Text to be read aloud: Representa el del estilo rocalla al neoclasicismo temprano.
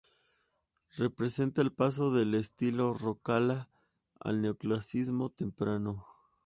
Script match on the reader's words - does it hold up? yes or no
no